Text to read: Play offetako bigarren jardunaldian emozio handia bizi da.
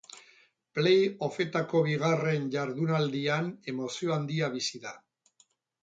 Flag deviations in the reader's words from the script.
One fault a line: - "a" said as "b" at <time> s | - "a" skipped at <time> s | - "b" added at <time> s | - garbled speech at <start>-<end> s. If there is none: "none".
none